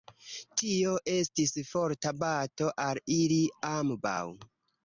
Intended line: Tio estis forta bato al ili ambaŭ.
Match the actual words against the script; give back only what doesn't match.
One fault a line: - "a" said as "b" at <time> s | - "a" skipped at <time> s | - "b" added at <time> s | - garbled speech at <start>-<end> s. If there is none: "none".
none